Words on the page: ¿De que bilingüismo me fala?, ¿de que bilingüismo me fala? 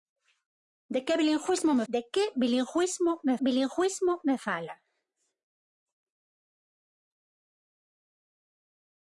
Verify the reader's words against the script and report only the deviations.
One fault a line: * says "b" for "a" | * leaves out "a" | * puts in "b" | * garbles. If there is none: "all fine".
* leaves out "fala"
* puts in "bilingüismo me"